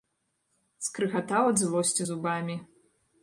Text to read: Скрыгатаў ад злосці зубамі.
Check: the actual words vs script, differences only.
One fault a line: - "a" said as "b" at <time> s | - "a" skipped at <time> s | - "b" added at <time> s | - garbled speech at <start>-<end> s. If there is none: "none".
none